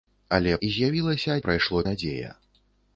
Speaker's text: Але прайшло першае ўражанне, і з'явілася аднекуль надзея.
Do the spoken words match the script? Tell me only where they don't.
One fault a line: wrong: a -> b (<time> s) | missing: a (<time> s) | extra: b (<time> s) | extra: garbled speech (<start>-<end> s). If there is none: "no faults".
missing: прайшло першае ўражанне (0.5 s)
wrong: аднекуль -> прайшло (1.4 s)